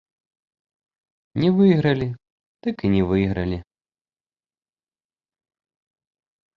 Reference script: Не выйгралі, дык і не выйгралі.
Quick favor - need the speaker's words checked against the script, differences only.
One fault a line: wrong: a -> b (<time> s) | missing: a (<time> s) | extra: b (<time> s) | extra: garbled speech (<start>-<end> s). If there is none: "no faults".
no faults